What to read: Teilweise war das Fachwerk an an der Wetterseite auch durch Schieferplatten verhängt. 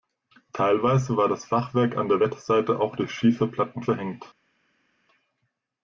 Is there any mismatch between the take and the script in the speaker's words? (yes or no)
yes